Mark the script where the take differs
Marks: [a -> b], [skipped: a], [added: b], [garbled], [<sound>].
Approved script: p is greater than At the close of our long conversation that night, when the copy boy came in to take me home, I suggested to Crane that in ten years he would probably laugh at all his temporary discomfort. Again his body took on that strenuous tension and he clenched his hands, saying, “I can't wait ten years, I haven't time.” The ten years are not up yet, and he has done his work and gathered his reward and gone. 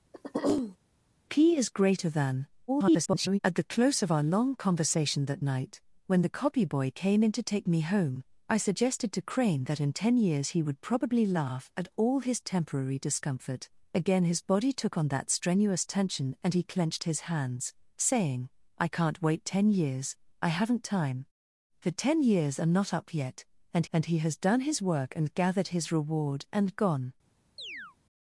[throat clearing] p is greater than [garbled] At the close of our long conversation that night, when the copy boy came in to take me home, I suggested to Crane that in ten years he would probably laugh at all his temporary discomfort. Again his body took on that strenuous tension and he clenched his hands, saying, “I can't wait ten years, I haven't time.” The ten years are not up yet, and [added: and] he has done his work and gathered his reward and gone. [chirp]